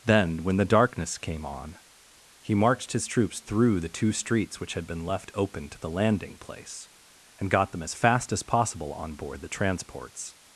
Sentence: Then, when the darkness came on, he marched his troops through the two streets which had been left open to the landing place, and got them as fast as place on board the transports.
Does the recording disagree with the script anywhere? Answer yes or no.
yes